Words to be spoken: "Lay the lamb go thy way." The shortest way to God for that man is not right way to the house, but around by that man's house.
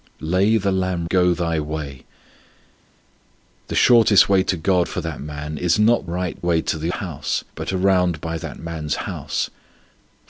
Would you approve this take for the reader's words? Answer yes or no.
yes